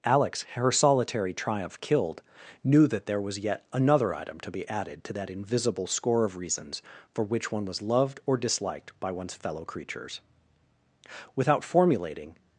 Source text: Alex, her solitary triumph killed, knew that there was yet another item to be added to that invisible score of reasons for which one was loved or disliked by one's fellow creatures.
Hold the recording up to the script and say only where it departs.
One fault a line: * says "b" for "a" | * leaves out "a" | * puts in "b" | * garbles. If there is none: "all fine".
* puts in "Without formulating"